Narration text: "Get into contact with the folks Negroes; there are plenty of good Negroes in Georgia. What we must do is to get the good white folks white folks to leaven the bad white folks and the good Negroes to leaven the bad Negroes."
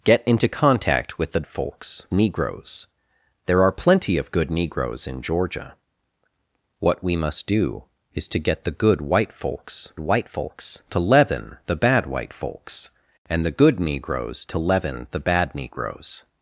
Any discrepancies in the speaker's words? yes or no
no